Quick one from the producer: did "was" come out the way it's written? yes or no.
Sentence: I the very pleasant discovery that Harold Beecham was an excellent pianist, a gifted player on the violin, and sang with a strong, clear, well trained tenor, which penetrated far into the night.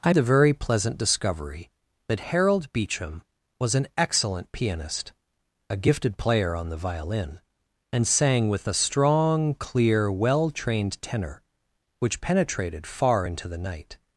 yes